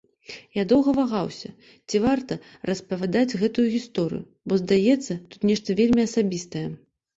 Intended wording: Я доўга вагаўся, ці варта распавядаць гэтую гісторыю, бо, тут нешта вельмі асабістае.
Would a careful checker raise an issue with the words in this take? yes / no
yes